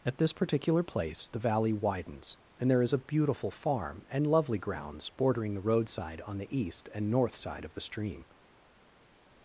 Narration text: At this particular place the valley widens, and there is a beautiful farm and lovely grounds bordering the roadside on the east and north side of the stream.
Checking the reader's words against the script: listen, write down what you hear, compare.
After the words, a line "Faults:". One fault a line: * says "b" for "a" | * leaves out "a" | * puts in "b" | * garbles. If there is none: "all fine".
At this particular place the valley widens, and there is a beautiful farm and lovely grounds bordering the roadside on the east and north side of the stream.
Faults:
all fine